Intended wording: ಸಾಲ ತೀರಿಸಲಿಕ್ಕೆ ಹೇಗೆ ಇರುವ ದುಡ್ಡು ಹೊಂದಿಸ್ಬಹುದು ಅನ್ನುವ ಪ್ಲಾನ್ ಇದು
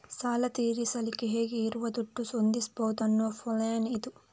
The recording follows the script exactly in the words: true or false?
true